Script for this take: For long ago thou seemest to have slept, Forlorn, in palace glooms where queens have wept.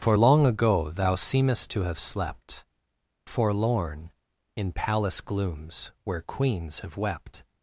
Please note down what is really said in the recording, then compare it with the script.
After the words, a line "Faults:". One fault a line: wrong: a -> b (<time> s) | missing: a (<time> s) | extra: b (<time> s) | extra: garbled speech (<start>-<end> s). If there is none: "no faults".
For long ago thou seemest to have slept, Forlorn, in palace glooms where queens have wept.
Faults:
no faults